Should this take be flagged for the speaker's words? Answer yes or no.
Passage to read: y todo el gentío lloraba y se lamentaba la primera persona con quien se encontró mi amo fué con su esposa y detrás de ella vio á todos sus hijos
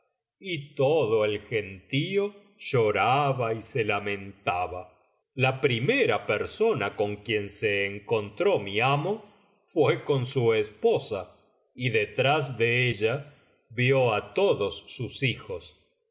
no